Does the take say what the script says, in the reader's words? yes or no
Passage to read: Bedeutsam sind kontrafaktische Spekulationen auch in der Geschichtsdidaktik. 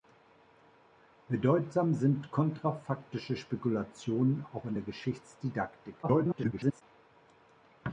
no